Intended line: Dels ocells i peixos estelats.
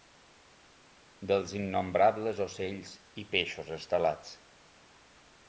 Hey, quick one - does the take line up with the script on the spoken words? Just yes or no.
no